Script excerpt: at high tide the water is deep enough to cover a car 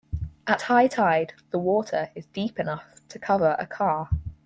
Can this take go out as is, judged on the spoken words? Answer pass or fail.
pass